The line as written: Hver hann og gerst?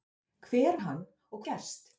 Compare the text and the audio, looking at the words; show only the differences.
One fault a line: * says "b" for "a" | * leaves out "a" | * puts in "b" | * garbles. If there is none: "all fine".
all fine